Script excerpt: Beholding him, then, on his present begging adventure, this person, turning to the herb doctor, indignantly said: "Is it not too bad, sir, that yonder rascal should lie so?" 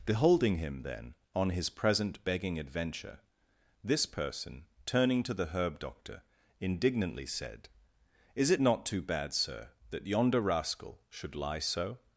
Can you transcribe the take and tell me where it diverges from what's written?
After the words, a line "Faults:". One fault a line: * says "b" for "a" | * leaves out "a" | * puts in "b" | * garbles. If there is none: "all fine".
Beholding him, then, on his present begging adventure, this person, turning to the herb doctor, indignantly said: "Is it not too bad, sir, that yonder rascal should lie so?"
Faults:
all fine